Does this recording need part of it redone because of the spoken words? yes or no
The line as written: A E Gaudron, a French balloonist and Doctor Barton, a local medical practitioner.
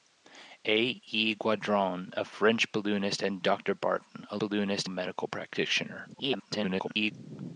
yes